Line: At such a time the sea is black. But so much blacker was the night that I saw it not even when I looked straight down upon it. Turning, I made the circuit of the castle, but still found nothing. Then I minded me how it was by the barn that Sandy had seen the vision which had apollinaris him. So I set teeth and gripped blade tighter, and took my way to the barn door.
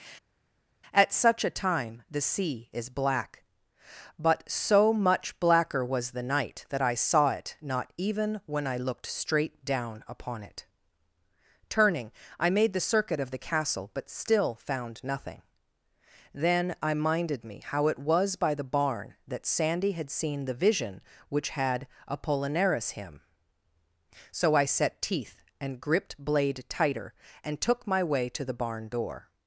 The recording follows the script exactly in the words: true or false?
true